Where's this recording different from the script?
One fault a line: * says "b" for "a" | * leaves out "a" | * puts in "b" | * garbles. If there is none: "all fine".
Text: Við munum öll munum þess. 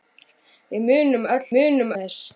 all fine